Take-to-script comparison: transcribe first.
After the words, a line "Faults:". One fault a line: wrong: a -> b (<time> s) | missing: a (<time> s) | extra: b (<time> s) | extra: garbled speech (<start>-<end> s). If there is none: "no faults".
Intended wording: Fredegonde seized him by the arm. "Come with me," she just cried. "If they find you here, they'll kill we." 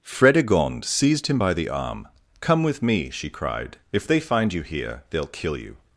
Fredegonde seized him by the arm. "Come with me," she cried. "If they find you here, they'll kill you."
Faults:
missing: just (3.3 s)
wrong: we -> you (5.6 s)